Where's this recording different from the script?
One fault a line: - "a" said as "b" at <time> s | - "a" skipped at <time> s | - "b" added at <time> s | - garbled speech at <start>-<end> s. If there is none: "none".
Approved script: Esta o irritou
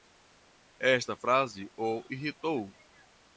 - "frase" added at 1.1 s